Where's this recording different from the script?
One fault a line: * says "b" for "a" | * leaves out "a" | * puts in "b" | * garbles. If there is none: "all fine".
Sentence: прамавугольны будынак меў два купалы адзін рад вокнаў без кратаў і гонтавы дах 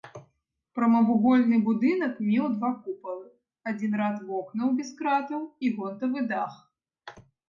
all fine